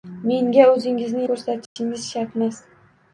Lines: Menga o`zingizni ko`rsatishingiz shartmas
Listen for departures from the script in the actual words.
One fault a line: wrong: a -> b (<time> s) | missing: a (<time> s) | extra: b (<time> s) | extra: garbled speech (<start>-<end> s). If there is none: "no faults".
no faults